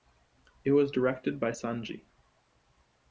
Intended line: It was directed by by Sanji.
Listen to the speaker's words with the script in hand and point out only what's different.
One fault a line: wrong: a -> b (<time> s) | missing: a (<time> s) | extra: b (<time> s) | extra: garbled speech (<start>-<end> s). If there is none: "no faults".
missing: by (1.5 s)